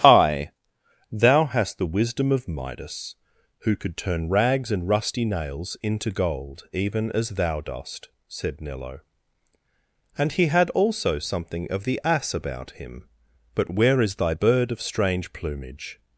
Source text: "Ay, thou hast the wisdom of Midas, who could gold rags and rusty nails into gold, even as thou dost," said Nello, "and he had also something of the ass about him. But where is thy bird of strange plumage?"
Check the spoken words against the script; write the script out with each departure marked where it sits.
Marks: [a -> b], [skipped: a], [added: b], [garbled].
"Ay, thou hast the wisdom of Midas, who could [gold -> turn] rags and rusty nails into gold, even as thou dost," said Nello, "and he had also something of the ass about him. But where is thy bird of strange plumage?"